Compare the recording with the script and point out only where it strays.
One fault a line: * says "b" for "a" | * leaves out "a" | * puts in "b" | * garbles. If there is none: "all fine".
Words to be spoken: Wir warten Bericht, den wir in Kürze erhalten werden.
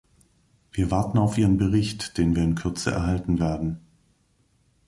* puts in "auf Ihren"